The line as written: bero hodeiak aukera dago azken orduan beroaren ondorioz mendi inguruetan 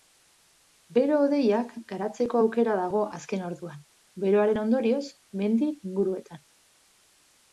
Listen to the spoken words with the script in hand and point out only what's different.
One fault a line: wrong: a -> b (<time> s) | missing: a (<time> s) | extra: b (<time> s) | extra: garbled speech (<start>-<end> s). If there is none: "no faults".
extra: garatzeko (1.9 s)